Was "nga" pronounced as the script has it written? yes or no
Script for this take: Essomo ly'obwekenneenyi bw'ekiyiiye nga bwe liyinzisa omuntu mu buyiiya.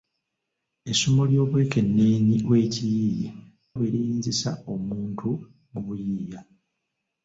no